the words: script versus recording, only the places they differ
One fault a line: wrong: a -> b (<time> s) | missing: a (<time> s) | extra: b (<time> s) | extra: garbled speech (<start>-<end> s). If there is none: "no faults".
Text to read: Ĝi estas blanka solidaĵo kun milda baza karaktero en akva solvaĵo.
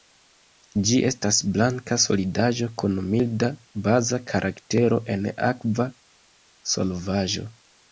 no faults